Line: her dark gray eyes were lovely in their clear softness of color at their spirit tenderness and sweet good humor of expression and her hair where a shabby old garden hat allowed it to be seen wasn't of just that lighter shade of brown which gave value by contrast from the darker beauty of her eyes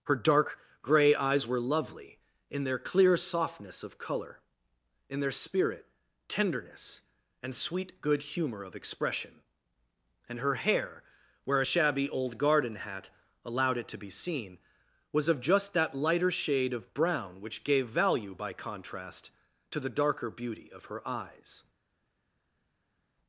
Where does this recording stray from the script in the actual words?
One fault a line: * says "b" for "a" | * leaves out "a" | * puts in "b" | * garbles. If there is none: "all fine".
* says "in" for "at"
* says "was" for "wasn't"
* says "to" for "from"